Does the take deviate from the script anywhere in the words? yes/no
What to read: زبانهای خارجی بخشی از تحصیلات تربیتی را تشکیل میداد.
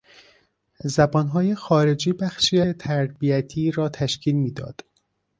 yes